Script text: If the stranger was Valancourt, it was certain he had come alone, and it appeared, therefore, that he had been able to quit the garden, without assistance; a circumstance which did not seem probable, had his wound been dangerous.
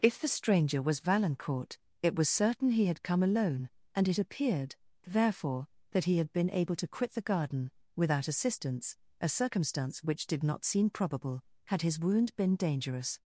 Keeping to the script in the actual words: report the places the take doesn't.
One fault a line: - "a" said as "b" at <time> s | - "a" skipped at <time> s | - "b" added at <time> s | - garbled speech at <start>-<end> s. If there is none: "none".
none